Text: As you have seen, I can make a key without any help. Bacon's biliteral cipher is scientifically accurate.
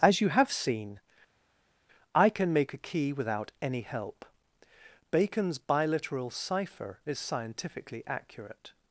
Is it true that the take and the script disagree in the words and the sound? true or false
false